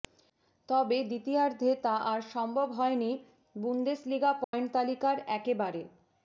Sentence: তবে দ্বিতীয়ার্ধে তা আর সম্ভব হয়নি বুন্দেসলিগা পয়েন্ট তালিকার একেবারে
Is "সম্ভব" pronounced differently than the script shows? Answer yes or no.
no